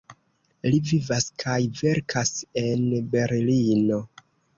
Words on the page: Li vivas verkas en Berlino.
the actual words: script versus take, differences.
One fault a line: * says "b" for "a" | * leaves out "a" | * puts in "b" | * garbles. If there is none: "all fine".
* puts in "kaj"